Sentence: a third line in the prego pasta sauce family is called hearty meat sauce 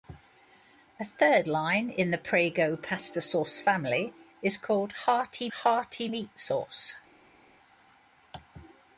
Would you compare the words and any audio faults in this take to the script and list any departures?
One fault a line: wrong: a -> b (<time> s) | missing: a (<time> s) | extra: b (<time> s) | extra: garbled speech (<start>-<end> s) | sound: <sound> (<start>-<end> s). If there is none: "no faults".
extra: hearty (5.5 s)